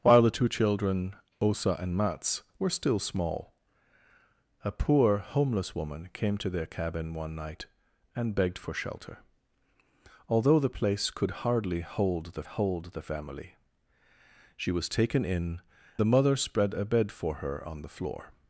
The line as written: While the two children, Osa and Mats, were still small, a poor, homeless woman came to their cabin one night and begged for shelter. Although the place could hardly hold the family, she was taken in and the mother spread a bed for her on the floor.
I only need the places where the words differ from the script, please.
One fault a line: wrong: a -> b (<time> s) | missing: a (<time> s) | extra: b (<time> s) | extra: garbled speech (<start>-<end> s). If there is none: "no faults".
extra: hold the (12.4 s)
missing: and (15.6 s)